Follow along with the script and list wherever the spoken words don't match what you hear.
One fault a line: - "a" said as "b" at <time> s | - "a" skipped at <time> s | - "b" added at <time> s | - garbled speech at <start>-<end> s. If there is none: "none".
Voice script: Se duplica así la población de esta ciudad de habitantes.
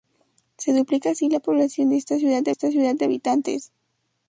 - "esta ciudad de" added at 2.5 s